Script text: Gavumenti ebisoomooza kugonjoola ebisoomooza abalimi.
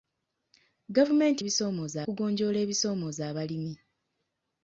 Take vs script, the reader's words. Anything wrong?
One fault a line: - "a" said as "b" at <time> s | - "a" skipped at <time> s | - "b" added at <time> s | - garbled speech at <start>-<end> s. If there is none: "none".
none